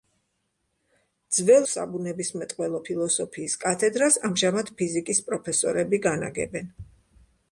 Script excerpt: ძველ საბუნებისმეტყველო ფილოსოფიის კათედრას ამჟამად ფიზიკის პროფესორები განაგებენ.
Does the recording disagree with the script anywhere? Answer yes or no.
no